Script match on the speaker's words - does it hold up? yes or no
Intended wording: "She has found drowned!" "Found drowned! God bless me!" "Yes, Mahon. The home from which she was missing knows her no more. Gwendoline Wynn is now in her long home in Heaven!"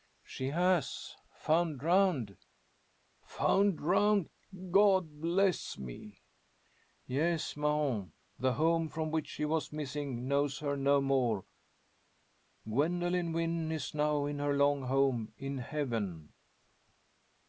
yes